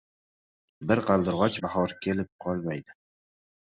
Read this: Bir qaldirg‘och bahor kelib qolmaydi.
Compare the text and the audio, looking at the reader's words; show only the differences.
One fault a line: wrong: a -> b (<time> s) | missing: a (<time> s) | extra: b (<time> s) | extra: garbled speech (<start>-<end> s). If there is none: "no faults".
no faults